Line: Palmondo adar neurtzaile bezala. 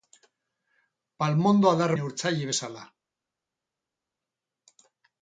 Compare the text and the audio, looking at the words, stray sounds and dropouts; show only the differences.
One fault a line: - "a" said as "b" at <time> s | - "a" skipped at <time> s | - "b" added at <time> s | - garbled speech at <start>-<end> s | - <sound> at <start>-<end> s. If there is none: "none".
none